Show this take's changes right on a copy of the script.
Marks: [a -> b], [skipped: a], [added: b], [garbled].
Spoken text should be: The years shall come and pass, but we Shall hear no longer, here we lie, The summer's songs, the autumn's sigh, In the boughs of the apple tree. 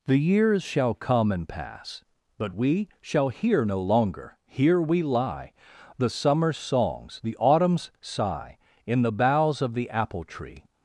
The years shall come and pass, but we Shall hear no longer, here we lie, The summer's songs, the autumn's sigh, In the boughs of the apple tree.